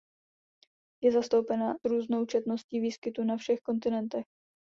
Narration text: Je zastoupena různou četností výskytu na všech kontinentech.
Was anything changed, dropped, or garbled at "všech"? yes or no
no